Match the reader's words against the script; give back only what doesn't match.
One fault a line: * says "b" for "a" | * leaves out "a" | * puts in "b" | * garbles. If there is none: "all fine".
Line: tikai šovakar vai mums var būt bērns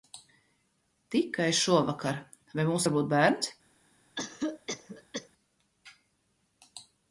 all fine